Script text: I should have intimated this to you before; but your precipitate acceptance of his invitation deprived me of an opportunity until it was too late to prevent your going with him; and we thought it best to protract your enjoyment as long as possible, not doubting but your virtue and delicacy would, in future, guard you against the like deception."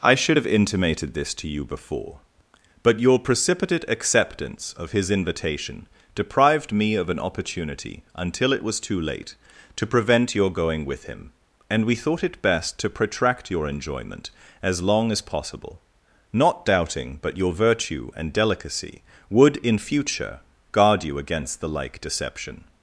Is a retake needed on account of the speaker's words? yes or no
no